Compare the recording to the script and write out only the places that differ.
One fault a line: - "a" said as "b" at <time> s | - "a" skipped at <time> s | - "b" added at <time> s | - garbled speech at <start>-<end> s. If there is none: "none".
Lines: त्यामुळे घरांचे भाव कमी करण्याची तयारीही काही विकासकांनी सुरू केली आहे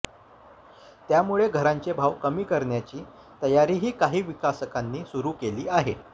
none